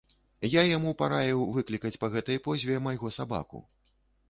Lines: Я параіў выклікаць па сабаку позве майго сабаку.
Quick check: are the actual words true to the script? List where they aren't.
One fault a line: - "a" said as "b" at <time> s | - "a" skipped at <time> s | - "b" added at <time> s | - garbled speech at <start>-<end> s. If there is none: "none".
- "яму" added at 0.8 s
- "сабаку" said as "гэтай" at 2.2 s